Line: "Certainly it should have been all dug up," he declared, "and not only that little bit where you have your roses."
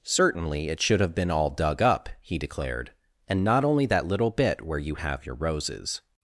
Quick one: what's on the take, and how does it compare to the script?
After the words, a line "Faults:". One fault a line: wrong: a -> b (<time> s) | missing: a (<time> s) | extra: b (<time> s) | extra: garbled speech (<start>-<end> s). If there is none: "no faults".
"Certainly it should have been all dug up," he declared, "and not only that little bit where you have your roses."
Faults:
no faults